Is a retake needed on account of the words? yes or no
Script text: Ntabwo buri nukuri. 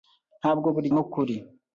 no